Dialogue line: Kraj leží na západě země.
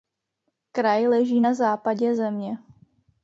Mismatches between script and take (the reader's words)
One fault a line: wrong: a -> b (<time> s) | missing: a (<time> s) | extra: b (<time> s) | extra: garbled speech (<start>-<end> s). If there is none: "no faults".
no faults